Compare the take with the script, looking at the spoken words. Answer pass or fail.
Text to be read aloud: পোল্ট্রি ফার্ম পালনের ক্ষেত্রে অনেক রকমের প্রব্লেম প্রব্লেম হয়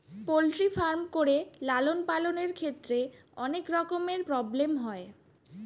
fail